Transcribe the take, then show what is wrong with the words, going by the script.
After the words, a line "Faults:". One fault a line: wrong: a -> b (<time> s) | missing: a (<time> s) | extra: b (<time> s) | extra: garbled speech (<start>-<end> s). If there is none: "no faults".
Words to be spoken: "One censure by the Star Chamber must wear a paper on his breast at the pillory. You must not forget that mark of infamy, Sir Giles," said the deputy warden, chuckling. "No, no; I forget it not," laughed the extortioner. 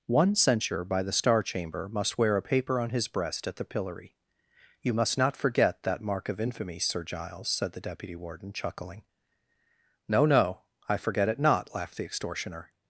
"One censure by the Star Chamber must wear a paper on his breast at the pillory. You must not forget that mark of infamy, Sir Giles," said the deputy warden, chuckling. "No, no; I forget it not," laughed the extortioner.
Faults:
no faults